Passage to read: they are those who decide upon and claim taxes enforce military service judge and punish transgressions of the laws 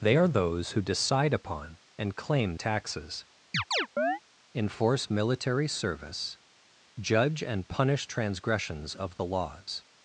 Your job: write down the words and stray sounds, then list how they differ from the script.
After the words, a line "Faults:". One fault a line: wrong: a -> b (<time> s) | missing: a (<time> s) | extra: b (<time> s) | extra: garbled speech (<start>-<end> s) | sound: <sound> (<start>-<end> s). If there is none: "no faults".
they are those who decide upon and claim taxes enforce military service judge and punish transgressions of the laws
Faults:
sound: chirp (3.5-4.2 s)